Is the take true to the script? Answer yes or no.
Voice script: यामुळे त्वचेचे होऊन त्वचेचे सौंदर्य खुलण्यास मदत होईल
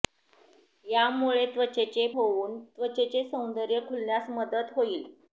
yes